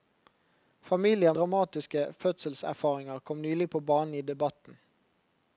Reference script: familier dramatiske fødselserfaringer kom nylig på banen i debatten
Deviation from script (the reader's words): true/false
false